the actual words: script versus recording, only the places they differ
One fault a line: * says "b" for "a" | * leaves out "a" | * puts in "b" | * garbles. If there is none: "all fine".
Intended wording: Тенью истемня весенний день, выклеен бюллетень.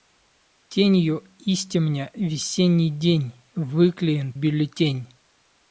all fine